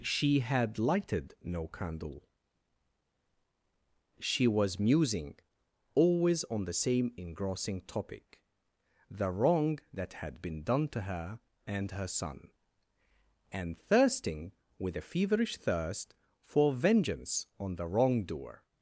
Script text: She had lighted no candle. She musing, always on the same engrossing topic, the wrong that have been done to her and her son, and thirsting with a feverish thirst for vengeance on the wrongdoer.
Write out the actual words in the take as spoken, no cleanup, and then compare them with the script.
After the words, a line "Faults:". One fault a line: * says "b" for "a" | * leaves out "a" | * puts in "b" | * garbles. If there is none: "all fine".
She had lighted no candle. She was musing, always on the same engrossing topic, the wrong that had been done to her and her son, and thirsting with a feverish thirst for vengeance on the wrongdoer.
Faults:
* puts in "was"
* says "had" for "have"